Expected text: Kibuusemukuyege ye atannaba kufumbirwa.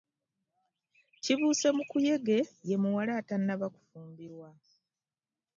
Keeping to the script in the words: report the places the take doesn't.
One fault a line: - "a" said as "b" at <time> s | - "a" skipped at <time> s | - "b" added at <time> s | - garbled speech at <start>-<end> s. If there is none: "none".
- "muwala" added at 2.8 s